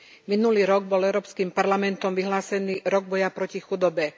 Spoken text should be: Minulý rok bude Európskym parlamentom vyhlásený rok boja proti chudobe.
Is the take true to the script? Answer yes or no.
no